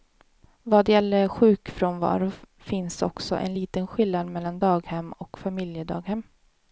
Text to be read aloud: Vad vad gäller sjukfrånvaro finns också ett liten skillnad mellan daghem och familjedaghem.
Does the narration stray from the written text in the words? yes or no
yes